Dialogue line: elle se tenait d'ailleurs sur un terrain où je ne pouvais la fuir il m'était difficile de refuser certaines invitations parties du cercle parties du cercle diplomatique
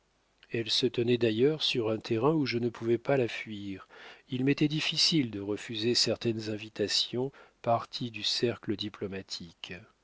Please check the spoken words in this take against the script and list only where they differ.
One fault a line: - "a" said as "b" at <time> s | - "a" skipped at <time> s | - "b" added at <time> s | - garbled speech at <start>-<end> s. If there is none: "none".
- "pas" added at 3.0 s
- "parties du cercle" skipped at 8.7 s